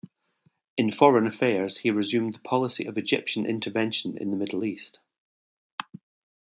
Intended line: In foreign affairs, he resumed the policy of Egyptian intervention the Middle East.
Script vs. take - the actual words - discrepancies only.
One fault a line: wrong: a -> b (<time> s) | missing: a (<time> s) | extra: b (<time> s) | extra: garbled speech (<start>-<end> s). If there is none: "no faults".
extra: in (4.2 s)